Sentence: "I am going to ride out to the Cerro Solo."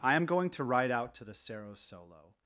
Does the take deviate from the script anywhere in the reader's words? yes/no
no